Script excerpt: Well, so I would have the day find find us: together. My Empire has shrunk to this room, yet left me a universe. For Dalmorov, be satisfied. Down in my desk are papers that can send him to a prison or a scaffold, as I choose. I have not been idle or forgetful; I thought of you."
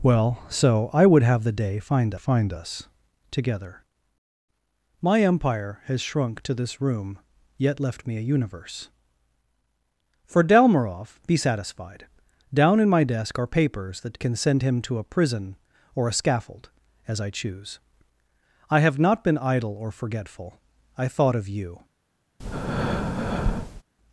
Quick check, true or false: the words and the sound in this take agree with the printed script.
false